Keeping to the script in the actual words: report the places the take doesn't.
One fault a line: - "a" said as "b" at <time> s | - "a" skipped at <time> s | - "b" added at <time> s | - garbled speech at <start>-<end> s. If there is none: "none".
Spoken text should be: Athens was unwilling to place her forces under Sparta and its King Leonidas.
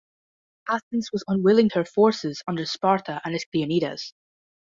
- "to place" skipped at 1.7 s
- "King" skipped at 3.4 s